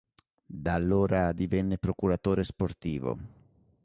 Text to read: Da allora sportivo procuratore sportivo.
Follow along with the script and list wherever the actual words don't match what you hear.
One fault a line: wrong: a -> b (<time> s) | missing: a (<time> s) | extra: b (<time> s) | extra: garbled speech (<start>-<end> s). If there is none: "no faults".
wrong: sportivo -> divenne (1.3 s)